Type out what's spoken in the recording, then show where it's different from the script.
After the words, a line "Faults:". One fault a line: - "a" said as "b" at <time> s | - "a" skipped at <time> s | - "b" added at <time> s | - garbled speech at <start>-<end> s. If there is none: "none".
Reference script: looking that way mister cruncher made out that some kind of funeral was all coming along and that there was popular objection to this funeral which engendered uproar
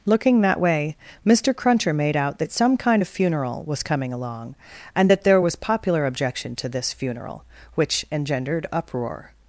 looking that way mister cruncher made out that some kind of funeral was coming along and that there was popular objection to this funeral which engendered uproar
Faults:
- "all" skipped at 3.8 s